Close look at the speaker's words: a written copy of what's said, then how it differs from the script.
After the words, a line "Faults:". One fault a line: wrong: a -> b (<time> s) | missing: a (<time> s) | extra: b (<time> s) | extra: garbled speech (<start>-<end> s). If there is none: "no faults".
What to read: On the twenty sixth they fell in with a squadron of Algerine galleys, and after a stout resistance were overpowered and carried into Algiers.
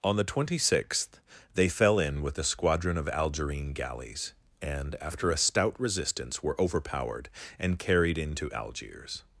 On the twenty sixth they fell in with a squadron of Algerine galleys, and after a stout resistance were overpowered and carried into Algiers.
Faults:
no faults